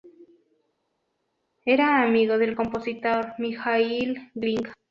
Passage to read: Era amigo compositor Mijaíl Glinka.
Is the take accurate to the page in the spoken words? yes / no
no